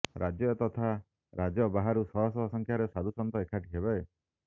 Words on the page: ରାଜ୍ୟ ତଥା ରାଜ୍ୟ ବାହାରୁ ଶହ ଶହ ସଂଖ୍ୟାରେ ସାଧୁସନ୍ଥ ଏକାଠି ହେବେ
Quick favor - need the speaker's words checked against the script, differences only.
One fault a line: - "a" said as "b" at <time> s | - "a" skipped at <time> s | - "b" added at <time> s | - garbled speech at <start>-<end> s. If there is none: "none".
none